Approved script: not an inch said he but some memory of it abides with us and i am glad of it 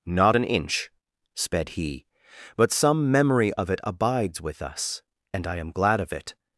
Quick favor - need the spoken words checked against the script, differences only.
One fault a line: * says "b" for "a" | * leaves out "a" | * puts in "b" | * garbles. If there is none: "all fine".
* says "sped" for "said"